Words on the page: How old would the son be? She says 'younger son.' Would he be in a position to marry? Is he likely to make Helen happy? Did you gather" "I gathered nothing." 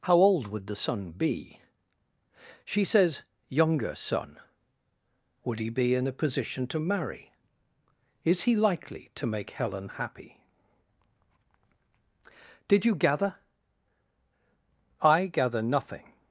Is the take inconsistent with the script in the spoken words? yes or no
yes